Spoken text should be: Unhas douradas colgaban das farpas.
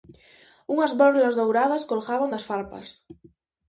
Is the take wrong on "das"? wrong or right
right